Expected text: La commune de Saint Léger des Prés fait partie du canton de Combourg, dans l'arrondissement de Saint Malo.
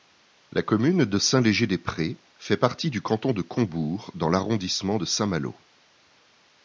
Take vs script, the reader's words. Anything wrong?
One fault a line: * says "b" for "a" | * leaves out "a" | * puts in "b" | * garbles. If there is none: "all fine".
all fine